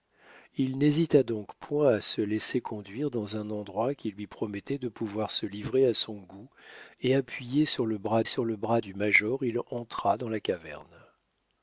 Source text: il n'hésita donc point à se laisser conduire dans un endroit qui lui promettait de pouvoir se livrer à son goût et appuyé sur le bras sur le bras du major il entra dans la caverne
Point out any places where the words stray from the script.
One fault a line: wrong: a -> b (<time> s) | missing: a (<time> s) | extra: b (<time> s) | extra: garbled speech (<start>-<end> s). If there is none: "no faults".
no faults